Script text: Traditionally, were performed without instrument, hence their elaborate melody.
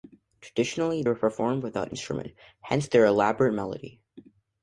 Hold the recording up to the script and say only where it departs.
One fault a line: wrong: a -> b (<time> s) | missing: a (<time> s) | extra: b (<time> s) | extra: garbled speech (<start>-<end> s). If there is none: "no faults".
no faults